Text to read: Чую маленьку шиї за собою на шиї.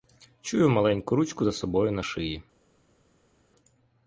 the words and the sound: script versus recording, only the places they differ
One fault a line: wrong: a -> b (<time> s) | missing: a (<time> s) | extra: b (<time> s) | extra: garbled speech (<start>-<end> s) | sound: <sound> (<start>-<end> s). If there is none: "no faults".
wrong: шиї -> ручку (1.1 s)